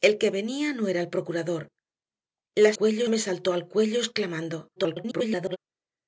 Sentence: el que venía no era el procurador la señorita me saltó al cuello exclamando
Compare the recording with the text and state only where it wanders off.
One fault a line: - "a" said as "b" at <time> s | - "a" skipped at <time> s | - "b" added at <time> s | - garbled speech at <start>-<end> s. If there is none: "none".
- "señorita" said as "cuello" at 2.7 s
- garbled speech at 4.8-5.6 s